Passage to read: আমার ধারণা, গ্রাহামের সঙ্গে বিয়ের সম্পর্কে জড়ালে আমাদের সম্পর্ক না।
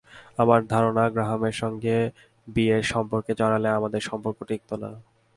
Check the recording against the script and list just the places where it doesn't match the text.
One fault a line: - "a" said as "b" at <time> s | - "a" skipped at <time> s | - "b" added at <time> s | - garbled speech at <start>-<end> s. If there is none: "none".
- "টিকত" added at 4.4 s